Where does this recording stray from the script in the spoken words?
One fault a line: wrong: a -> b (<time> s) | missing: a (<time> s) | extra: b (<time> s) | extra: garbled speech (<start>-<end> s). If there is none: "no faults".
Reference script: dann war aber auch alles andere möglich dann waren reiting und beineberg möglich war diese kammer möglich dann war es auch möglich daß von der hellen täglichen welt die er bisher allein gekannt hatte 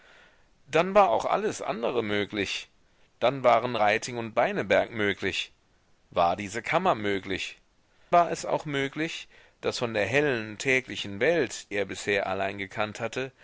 missing: aber (1.1 s)
missing: dann (7.6 s)
missing: die (11.7 s)